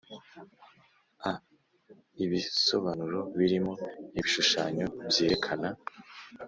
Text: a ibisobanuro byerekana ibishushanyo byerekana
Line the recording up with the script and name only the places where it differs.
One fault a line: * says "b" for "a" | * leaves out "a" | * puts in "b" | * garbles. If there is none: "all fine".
* says "birimo" for "byerekana"